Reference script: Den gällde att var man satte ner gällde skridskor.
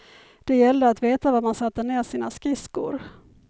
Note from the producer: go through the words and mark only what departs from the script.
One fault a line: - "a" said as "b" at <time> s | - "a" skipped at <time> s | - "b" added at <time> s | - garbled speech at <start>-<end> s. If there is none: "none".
- "Den" said as "Det" at 0.4 s
- "veta" added at 1.0 s
- "gällde" said as "sina" at 2.0 s